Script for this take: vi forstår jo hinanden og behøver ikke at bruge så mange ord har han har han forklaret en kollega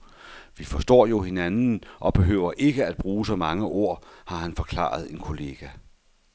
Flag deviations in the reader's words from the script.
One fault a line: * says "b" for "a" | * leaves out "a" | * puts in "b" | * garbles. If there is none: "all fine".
* leaves out "har han"